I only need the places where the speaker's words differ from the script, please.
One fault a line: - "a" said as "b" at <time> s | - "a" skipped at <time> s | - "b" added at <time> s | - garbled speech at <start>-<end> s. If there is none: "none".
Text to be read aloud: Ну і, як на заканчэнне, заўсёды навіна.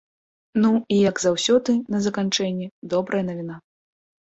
- "заўсёды" added at 1.2 s
- "заўсёды" said as "добрая" at 3.0 s